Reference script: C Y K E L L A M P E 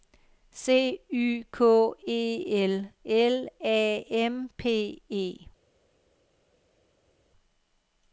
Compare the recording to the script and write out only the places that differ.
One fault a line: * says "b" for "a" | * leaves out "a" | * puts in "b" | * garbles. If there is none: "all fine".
all fine